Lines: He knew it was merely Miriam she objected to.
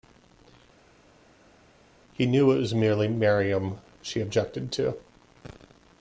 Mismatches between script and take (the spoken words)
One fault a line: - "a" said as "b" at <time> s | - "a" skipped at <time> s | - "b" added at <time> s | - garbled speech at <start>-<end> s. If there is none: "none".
none